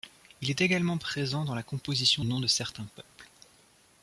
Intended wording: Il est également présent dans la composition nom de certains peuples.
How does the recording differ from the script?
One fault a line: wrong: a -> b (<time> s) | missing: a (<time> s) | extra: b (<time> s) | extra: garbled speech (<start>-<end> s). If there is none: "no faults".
no faults